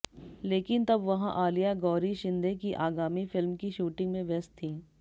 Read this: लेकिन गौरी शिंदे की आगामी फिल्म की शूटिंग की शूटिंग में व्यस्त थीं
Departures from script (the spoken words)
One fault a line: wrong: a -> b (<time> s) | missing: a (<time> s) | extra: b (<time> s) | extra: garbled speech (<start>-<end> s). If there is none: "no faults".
extra: तब वहां आलिया (0.8 s)
missing: की शूटिंग (4.1 s)